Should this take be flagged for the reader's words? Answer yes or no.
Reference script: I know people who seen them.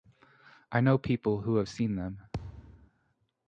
yes